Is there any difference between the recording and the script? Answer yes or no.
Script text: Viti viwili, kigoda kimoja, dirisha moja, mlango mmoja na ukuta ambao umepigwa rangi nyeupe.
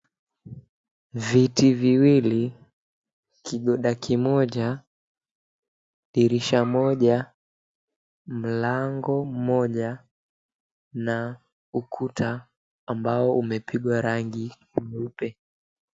no